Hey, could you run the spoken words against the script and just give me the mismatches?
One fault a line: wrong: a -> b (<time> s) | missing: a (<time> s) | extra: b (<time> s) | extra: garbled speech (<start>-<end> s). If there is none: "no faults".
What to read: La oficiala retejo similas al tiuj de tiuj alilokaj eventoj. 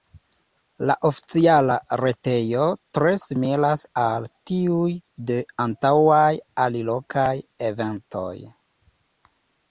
extra: tre (3.0 s)
wrong: tiuj -> antaŭaj (5.7 s)